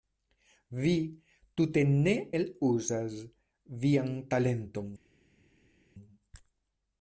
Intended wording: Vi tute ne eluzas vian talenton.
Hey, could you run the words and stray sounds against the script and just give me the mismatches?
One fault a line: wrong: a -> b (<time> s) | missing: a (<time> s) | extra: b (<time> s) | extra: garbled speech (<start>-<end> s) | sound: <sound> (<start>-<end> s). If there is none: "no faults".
no faults